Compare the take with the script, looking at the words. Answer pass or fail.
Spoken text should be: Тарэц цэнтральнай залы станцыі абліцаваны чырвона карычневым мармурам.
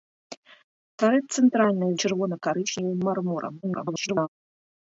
fail